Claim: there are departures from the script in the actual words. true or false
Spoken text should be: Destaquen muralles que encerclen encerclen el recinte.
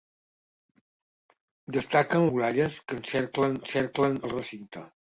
false